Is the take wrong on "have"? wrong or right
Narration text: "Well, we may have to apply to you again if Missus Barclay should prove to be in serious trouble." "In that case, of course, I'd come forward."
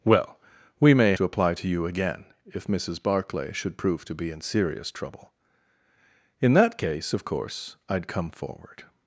wrong